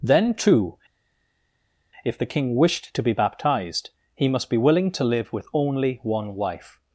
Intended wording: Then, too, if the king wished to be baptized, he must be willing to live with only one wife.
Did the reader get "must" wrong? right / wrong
right